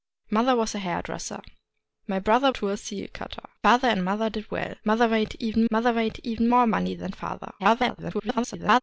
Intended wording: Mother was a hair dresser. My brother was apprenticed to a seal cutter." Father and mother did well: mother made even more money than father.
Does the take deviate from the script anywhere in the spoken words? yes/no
yes